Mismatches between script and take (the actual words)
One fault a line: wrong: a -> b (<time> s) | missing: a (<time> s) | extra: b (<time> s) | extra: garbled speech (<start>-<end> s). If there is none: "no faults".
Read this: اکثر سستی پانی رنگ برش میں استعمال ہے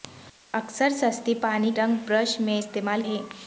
no faults